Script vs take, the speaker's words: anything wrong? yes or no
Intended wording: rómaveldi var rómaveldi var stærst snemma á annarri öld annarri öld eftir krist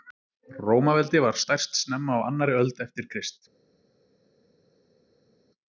yes